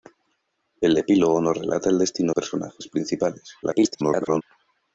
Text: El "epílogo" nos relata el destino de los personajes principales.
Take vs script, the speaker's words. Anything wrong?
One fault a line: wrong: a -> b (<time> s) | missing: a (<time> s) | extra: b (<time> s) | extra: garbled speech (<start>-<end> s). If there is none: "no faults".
missing: de los (2.4 s)
extra: garbled speech (3.6-4.4 s)